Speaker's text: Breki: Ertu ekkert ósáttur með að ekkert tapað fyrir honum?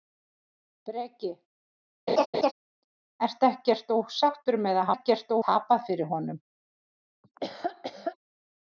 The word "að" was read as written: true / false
true